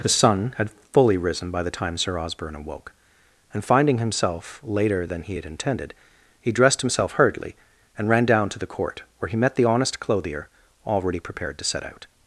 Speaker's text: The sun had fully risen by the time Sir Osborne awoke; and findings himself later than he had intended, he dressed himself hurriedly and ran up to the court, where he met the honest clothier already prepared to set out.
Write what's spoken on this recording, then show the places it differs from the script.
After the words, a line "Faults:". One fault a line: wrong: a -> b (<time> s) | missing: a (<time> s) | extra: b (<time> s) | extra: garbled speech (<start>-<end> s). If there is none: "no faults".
The sun had fully risen by the time Sir Osborne awoke; and finding himself later than he had intended, he dressed himself hurriedly and ran down to the court, where he met the honest clothier already prepared to set out.
Faults:
wrong: findings -> finding (3.6 s)
wrong: up -> down (8.2 s)